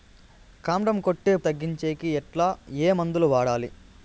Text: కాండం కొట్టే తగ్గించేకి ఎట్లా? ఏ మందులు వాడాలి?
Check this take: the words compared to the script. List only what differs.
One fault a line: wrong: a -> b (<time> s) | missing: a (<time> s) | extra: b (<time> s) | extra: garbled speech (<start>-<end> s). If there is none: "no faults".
no faults